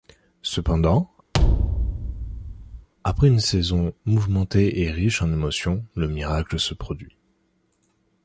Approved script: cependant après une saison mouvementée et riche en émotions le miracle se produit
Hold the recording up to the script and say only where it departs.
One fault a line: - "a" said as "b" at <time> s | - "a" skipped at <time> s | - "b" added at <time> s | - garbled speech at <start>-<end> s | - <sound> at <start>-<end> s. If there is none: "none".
- thud at 1.3-2.9 s